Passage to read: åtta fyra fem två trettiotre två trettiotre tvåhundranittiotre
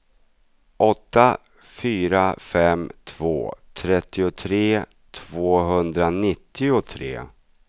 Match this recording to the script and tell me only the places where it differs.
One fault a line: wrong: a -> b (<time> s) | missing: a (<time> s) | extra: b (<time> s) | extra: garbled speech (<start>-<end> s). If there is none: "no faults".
missing: två trettiotre (4.8 s)